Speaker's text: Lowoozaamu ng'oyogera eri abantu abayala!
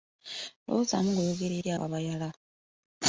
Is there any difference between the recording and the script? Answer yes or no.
yes